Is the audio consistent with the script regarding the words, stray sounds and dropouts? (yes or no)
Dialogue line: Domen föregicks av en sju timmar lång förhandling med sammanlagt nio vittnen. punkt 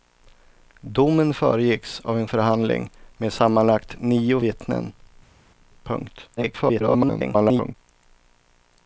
no